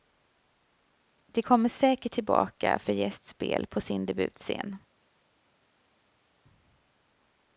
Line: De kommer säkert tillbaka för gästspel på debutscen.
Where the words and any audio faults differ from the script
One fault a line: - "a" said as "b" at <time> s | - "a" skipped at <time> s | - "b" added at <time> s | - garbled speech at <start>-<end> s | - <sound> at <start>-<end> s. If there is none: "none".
- "sin" added at 3.8 s